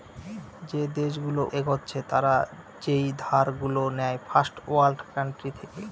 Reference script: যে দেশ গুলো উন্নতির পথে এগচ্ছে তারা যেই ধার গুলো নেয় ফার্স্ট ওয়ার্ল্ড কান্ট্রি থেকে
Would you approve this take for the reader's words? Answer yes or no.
no